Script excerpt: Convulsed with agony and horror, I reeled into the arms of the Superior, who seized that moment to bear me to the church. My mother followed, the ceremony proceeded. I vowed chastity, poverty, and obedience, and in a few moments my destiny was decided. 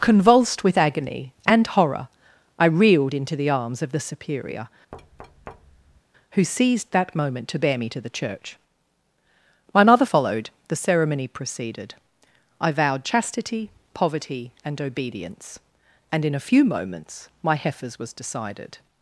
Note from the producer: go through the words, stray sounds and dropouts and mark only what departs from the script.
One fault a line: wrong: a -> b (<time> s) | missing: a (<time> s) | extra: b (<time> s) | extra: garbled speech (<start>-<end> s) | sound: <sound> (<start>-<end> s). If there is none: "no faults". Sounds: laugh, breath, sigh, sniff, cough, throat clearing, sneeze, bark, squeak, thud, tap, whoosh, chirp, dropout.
sound: thud (4.9-6.0 s)
wrong: destiny -> heifers (17.5 s)